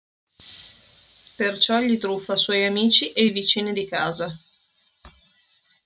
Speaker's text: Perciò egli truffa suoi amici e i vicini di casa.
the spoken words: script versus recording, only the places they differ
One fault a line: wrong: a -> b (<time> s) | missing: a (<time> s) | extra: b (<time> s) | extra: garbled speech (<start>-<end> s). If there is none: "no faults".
no faults